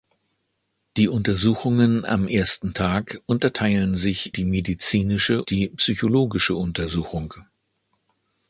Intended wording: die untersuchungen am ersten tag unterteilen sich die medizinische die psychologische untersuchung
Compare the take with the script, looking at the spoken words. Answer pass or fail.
pass